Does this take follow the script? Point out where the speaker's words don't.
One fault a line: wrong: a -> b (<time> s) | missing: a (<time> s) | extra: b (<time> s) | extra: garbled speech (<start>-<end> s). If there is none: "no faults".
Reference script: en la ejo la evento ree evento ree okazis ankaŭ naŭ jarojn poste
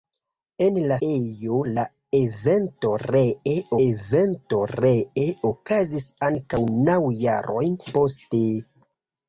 no faults